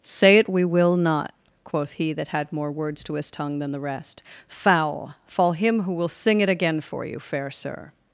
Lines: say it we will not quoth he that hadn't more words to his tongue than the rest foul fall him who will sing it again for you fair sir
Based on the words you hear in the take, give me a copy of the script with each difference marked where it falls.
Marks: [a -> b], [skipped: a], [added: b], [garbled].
say it we will not quoth he that [hadn't -> had] more words to his tongue than the rest foul fall him who will sing it again for you fair sir